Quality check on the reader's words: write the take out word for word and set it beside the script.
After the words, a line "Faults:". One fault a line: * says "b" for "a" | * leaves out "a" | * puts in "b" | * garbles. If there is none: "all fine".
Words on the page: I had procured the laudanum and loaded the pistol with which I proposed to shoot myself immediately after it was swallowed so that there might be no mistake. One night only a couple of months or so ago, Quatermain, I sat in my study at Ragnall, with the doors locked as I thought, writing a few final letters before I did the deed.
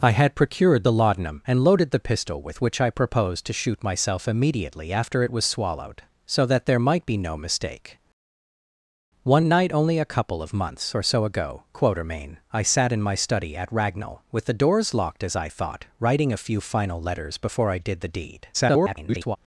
I had procured the laudanum and loaded the pistol with which I proposed to shoot myself immediately after it was swallowed so that there might be no mistake. One night only a couple of months or so ago, Quatermain, I sat in my study at Ragnall, with the doors locked as I thought, writing a few final letters before I did the deed. [garbled]
Faults:
* garbles